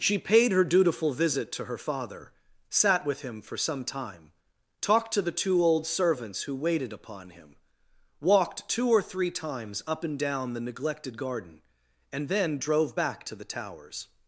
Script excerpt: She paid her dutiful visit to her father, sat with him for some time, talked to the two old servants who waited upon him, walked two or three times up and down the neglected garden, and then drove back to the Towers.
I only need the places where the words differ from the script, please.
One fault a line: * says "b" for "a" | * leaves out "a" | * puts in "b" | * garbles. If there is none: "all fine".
all fine